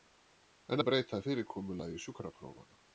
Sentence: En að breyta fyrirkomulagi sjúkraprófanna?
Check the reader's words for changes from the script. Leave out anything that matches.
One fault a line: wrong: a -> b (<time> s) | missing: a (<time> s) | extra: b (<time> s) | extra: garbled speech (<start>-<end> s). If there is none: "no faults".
no faults